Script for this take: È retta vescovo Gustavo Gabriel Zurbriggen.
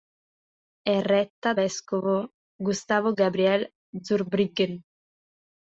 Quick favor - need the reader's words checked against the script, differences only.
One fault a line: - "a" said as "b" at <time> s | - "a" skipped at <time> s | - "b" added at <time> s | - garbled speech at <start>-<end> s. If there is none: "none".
none